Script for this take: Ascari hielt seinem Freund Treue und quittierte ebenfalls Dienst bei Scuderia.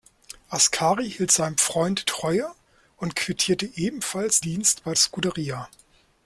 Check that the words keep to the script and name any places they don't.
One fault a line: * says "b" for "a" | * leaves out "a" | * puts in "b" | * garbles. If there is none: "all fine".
all fine